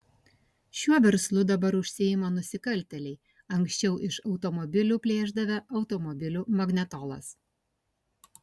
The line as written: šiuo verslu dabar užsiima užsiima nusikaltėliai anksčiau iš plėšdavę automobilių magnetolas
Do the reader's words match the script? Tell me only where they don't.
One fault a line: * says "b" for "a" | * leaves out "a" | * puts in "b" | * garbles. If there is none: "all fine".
* leaves out "užsiima"
* puts in "automobilių"